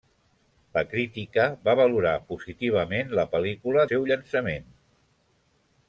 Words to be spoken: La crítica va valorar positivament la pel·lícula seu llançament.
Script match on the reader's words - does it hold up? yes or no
yes